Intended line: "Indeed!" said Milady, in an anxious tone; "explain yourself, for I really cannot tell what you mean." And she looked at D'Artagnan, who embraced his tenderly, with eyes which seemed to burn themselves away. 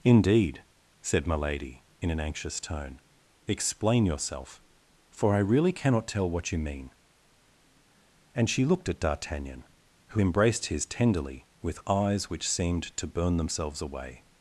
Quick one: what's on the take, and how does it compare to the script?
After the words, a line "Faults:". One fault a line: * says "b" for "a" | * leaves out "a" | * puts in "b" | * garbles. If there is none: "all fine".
"Indeed!" said Milady, in an anxious tone; "explain yourself, for I really cannot tell what you mean." And she looked at D'Artagnan, who embraced his tenderly, with eyes which seemed to burn themselves away.
Faults:
all fine